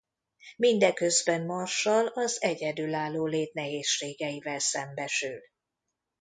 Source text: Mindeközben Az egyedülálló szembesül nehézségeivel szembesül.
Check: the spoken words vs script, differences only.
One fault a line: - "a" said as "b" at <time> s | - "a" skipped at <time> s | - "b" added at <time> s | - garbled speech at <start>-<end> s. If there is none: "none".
- "Marshall" added at 1.4 s
- "szembesül" said as "lét" at 3.2 s